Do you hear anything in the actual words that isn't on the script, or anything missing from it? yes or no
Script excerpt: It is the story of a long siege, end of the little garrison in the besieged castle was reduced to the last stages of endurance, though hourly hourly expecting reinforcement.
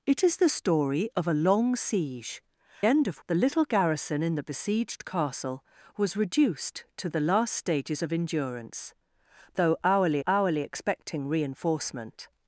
no